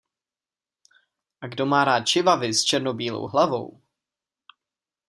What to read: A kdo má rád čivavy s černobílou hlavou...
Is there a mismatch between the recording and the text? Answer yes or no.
no